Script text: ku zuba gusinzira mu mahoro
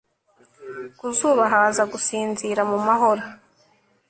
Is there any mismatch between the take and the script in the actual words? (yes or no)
yes